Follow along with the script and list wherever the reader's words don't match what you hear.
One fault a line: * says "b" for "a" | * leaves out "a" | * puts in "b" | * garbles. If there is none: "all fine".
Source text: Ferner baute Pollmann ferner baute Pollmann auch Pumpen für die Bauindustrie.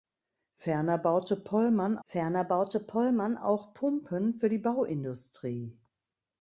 all fine